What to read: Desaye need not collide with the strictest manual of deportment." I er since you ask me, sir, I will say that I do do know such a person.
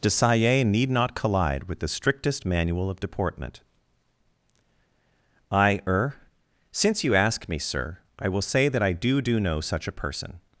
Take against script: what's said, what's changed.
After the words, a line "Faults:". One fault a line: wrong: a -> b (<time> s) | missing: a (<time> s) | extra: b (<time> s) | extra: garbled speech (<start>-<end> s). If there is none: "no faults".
Desaye need not collide with the strictest manual of deportment." I er since you ask me, sir, I will say that I do do know such a person.
Faults:
no faults